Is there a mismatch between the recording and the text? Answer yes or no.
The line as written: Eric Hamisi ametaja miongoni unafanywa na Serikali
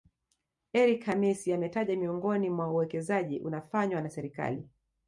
yes